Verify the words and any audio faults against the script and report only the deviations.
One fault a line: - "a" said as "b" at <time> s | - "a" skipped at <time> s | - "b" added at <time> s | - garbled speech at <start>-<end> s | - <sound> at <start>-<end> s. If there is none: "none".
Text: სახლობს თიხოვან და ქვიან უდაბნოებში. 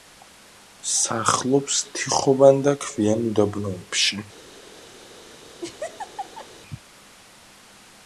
- laugh at 5.6-6.5 s